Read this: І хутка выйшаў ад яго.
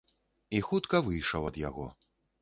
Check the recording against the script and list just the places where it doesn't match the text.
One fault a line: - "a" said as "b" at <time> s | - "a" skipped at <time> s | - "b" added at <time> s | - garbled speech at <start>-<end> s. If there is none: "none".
none